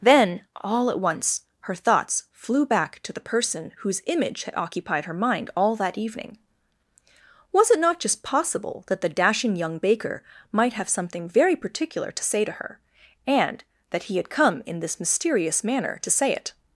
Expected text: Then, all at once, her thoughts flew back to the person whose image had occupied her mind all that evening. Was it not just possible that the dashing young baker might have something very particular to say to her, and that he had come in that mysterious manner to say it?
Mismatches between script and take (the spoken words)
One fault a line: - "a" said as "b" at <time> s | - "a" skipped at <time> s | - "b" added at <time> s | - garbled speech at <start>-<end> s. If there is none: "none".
- "that" said as "this" at 14.8 s